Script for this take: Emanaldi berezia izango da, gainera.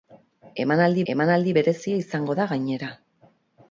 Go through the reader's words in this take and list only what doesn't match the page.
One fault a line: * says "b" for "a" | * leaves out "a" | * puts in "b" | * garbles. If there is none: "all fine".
* puts in "emanaldi"